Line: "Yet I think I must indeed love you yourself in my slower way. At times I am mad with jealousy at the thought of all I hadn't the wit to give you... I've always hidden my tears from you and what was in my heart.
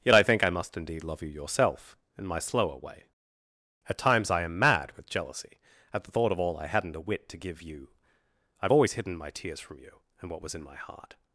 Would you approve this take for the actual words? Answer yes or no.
no